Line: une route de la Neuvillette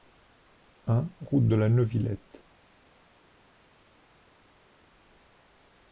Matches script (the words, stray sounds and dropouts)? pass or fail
fail